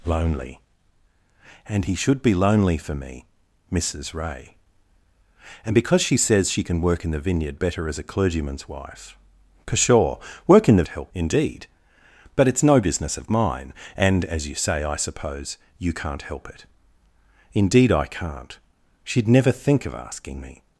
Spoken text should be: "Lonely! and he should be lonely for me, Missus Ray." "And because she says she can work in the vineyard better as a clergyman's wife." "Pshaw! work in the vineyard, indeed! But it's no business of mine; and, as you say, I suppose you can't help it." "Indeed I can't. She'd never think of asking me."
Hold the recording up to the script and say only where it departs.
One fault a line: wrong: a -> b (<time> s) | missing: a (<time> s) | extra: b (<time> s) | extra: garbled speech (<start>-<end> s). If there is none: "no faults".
wrong: vineyard -> help (10.9 s)